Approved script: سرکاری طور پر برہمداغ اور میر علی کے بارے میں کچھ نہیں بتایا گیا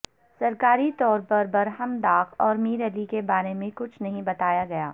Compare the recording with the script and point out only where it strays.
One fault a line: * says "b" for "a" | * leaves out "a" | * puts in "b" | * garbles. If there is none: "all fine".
all fine